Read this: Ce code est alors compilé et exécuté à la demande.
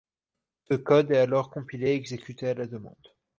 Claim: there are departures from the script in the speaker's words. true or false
false